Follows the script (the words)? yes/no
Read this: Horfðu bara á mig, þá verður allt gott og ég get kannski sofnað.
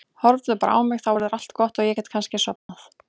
yes